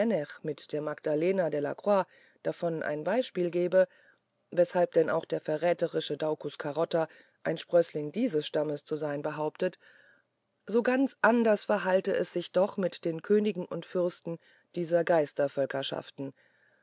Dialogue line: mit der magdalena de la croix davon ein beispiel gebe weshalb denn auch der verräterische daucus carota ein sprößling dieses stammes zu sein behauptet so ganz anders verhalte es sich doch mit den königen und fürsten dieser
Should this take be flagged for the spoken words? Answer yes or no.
no